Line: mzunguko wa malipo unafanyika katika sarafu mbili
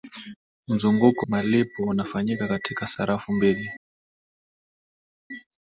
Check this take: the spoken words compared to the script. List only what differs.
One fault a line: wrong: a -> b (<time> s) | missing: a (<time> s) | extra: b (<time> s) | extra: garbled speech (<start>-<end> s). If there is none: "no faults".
missing: wa (1.2 s)